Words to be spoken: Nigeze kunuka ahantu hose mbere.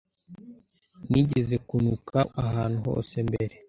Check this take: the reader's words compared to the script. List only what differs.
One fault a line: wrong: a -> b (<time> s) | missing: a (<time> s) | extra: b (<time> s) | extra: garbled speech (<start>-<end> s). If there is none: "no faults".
no faults